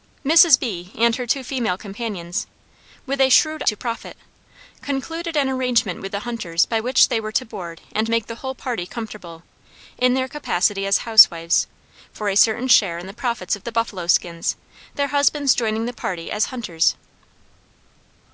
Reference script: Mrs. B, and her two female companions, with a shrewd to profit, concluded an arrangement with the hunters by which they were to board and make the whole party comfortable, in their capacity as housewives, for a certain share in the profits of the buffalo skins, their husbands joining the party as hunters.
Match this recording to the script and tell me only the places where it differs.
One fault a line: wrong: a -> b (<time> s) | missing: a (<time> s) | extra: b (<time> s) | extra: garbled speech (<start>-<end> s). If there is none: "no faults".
no faults